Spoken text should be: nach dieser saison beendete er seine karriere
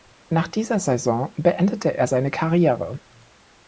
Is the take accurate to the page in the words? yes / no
yes